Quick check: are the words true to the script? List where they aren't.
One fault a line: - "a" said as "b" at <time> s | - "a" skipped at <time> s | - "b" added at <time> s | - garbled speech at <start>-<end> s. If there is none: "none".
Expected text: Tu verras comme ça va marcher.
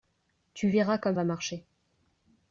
- "ça" skipped at 1.2 s